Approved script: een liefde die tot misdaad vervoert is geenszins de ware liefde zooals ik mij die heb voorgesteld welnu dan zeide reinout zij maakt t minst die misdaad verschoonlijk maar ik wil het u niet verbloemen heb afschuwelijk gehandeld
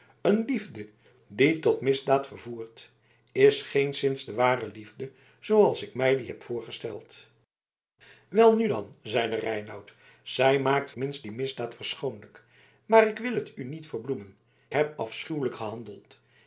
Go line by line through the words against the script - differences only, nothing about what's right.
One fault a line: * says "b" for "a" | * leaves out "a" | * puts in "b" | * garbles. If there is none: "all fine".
all fine